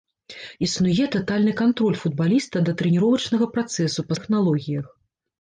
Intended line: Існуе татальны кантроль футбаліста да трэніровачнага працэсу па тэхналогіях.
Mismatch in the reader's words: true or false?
false